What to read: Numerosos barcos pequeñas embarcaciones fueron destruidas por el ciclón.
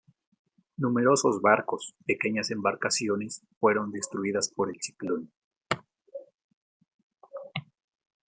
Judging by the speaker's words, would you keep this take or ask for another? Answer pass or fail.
pass